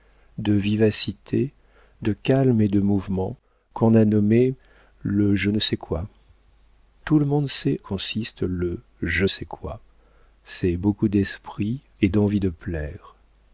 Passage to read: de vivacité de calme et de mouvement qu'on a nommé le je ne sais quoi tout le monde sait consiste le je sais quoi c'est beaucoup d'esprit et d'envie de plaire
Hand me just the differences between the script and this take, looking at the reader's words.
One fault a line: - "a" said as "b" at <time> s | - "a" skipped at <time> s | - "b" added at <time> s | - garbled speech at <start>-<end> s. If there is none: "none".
none